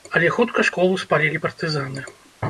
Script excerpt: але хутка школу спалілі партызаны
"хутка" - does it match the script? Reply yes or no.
yes